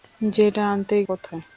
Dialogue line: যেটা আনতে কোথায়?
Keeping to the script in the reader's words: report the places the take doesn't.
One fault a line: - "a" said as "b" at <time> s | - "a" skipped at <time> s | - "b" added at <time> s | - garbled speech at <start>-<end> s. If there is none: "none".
none